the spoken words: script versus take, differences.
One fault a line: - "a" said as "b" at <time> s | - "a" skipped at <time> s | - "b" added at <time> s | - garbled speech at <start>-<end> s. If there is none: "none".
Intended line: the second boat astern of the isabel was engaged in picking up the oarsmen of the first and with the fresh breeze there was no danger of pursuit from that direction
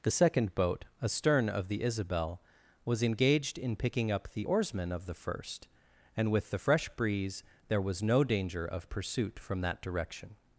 none